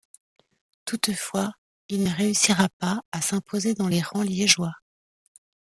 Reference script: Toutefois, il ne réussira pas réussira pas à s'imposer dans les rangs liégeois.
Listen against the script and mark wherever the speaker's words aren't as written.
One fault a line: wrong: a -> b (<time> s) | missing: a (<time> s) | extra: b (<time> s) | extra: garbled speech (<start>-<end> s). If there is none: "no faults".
missing: réussira pas (3.0 s)